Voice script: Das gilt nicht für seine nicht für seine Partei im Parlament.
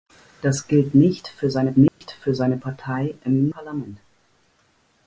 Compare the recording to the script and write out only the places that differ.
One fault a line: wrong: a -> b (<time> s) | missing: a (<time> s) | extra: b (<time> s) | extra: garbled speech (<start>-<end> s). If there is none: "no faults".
no faults